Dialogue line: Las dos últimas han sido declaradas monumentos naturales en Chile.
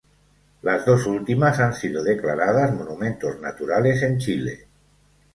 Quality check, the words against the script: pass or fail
pass